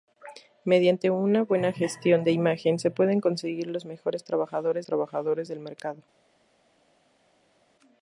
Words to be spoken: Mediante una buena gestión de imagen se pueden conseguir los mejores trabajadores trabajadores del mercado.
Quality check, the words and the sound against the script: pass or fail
pass